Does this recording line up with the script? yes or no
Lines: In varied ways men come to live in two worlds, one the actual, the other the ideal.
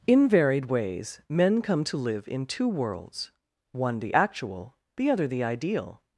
yes